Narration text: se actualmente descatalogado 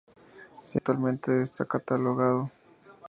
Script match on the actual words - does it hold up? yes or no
yes